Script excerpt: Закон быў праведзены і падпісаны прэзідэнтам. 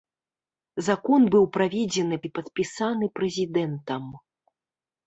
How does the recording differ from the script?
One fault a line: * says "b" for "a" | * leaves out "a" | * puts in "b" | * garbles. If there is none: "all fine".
all fine